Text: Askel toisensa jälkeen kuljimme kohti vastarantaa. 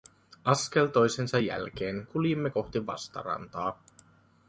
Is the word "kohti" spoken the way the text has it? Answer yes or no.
yes